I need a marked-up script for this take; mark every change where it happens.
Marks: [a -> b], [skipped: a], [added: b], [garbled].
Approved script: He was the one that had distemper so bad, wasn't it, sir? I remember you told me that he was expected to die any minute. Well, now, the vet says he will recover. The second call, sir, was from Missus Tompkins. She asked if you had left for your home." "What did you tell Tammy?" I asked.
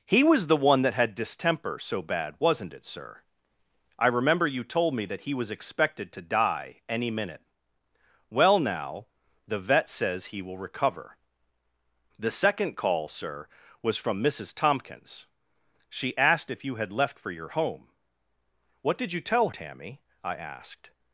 He was the one that had distemper so bad, wasn't it, sir? I remember you told me that he was expected to die any minute. Well, now, the vet says he will recover. The second call, sir, was from Missus Tompkins. She asked if you had left for your home." "What did you tell Tammy?" I asked.